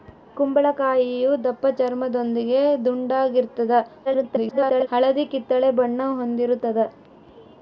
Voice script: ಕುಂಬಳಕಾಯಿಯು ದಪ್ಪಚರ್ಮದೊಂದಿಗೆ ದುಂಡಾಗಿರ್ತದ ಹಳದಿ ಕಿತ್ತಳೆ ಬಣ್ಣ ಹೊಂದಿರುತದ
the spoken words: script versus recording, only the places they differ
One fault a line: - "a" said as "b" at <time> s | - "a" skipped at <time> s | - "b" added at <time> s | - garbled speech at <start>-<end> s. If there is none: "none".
- garbled speech at 4.0-4.9 s